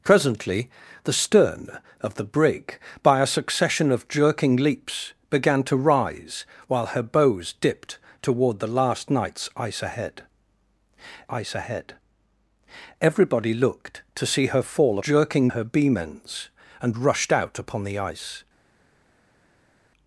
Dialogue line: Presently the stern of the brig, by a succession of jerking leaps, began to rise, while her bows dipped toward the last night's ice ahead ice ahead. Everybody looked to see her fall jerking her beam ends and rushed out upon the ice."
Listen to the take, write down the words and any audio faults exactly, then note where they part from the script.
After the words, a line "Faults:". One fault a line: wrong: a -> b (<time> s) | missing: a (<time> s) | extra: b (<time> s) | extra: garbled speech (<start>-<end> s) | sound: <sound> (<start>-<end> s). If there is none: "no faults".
Presently the stern of the brig, by a succession of jerking leaps, began to rise, while her bows dipped toward the last night's ice ahead ice ahead. Everybody looked to see her fall jerking her beam ends and rushed out upon the ice."
Faults:
no faults